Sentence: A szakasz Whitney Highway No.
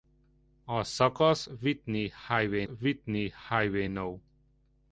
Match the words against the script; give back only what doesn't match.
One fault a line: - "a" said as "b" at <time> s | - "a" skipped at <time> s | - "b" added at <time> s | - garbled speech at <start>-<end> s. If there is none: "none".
- "Whitney Highway" added at 2.7 s